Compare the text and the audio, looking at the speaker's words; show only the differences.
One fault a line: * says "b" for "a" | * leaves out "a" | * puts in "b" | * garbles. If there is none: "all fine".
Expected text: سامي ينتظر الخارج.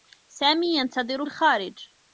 all fine